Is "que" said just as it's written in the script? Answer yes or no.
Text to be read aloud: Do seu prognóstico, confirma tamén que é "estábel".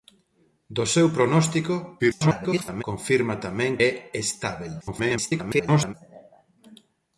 no